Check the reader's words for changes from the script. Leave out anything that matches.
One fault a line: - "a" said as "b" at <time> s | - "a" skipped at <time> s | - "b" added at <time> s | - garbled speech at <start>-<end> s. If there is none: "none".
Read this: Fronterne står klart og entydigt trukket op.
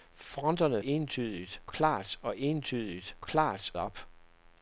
- "står" said as "entydigt" at 0.8 s
- "trukket" said as "klart" at 3.2 s